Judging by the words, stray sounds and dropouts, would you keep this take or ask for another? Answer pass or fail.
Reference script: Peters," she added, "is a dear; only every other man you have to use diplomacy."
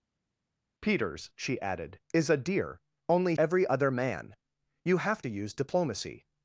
pass